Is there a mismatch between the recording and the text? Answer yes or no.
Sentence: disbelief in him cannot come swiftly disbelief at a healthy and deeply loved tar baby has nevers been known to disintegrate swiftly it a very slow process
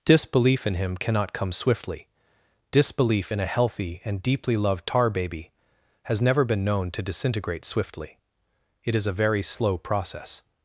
yes